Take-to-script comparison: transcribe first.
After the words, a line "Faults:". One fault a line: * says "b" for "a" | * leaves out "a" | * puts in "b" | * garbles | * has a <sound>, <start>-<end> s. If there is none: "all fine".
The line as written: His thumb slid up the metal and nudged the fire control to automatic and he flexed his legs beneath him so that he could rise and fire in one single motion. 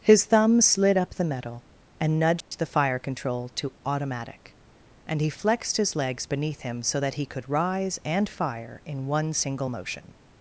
His thumb slid up the metal and nudged the fire control to automatic and he flexed his legs beneath him so that he could rise and fire in one single motion.
Faults:
* has a dropout, 2.4-2.5 s